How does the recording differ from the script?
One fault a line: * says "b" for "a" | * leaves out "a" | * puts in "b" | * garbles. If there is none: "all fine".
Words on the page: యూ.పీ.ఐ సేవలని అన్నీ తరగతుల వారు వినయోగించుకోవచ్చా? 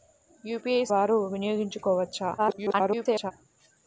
* leaves out "సేవలని అన్నీ తరగతుల"
* garbles